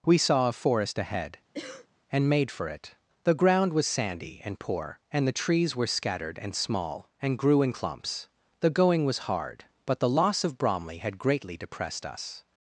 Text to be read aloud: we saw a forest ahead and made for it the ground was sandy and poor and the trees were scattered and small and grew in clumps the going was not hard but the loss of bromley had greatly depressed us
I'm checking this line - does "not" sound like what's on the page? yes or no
no